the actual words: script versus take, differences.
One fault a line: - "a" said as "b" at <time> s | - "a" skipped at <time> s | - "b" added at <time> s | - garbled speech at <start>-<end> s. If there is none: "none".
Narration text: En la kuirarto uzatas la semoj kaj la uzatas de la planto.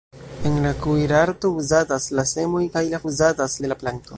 none